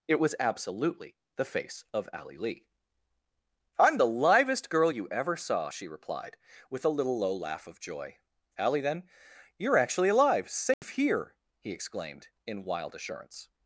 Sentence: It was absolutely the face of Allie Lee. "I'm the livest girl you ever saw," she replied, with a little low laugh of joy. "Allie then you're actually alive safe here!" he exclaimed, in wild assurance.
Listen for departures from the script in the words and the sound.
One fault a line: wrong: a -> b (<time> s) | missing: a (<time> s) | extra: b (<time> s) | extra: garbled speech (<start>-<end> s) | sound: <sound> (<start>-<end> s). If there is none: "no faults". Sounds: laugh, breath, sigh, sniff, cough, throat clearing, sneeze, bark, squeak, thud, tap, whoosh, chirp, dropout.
sound: dropout (10.7-10.8 s)